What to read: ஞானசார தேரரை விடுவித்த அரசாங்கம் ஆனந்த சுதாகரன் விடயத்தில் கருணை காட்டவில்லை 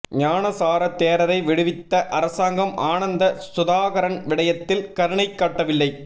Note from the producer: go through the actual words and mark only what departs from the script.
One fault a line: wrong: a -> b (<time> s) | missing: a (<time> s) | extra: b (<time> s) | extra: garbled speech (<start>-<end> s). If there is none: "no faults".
no faults